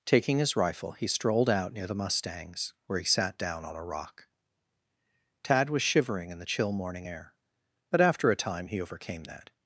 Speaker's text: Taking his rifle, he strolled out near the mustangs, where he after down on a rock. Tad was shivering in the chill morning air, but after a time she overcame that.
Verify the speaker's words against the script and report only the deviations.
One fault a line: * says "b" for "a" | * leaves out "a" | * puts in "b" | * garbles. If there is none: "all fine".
* says "sat" for "after"
* says "he" for "she"